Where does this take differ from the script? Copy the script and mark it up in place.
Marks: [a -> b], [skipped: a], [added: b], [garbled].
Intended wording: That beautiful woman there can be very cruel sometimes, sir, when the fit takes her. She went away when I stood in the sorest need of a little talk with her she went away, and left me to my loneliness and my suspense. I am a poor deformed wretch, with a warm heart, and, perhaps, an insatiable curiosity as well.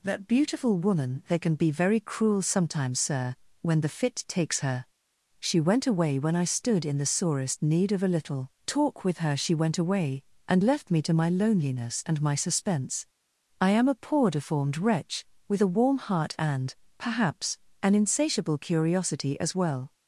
That beautiful woman [there -> they] can be very cruel sometimes, sir, when the fit takes her. She went away when I stood in the sorest need of a little talk with her she went away, and left me to my loneliness and my suspense. I am a poor deformed wretch, with a warm heart, and, perhaps, an insatiable curiosity as well.